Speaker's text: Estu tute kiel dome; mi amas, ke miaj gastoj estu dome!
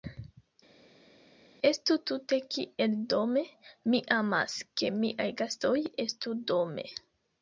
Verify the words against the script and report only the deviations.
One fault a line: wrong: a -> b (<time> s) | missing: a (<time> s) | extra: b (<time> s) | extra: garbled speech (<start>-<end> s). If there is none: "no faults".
no faults